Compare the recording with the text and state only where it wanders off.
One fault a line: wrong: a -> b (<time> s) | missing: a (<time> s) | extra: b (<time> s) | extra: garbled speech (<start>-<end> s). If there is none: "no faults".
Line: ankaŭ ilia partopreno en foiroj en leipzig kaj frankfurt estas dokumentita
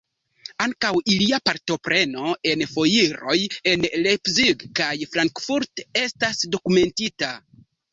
no faults